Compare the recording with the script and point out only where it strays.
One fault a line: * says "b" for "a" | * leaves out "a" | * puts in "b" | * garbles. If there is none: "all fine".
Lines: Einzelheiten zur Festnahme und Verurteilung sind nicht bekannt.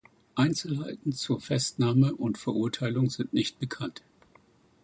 all fine